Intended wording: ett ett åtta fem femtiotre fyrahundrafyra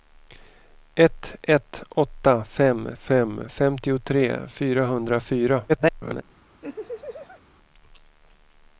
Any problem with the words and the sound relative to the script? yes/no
yes